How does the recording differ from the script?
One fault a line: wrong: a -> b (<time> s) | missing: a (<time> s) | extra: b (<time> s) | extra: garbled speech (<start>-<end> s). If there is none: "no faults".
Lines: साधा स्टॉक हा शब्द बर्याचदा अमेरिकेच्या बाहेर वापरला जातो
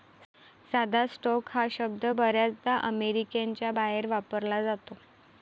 no faults